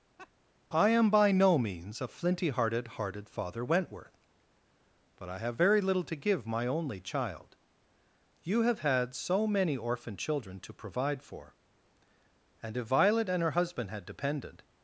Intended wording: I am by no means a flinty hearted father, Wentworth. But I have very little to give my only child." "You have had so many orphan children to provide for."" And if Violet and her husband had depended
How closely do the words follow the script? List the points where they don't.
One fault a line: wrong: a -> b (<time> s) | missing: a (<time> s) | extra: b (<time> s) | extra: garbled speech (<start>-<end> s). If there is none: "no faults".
extra: hearted (3.0 s)